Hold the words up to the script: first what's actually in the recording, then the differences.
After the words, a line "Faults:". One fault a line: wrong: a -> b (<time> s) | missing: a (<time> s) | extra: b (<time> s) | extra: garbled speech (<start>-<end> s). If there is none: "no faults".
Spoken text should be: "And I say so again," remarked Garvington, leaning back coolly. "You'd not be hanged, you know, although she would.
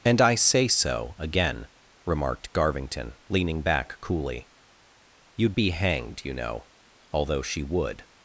"And I say so again," remarked Garvington, leaning back coolly. "You'd be hanged, you know, although she would.
Faults:
missing: not (5.6 s)